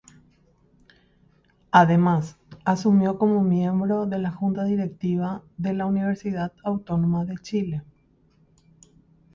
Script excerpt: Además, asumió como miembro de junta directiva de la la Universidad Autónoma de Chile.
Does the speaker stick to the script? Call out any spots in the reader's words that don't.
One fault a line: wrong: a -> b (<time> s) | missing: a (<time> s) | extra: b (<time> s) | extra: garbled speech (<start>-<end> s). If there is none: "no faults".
extra: la (4.2 s)
missing: la (5.8 s)